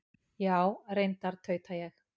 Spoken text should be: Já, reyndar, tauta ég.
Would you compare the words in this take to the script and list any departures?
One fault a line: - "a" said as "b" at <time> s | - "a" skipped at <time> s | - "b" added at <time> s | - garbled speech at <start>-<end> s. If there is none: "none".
none